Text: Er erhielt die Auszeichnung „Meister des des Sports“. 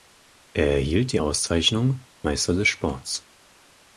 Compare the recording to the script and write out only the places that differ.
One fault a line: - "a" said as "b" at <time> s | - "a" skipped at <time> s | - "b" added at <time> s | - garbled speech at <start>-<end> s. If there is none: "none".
- "des" skipped at 2.7 s